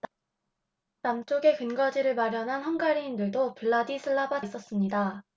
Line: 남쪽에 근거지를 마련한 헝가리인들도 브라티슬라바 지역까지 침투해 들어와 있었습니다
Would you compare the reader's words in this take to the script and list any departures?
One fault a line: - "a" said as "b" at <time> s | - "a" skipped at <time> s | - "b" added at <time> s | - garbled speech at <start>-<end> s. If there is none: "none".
- "지역까지 침투해 들어와" skipped at 4.4 s